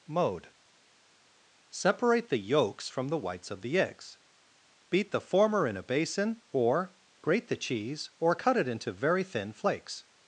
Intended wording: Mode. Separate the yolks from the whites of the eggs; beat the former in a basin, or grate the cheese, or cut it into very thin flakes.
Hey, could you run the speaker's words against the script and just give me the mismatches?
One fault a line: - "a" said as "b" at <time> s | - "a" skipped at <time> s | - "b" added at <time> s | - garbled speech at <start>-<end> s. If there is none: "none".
none